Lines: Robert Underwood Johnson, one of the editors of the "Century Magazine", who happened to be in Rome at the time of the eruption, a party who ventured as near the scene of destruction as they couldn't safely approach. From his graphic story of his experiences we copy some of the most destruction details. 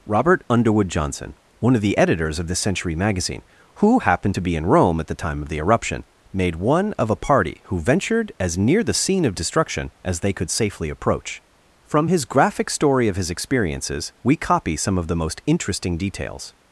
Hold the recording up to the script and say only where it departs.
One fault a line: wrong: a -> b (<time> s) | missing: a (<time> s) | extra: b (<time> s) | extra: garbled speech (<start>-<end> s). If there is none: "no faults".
extra: made one of (6.3 s)
wrong: couldn't -> could (10.3 s)
wrong: destruction -> interesting (15.5 s)